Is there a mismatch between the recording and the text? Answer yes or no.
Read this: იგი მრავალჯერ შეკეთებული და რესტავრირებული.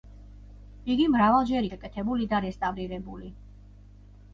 no